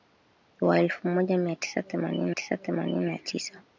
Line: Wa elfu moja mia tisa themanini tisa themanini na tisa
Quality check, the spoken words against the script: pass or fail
pass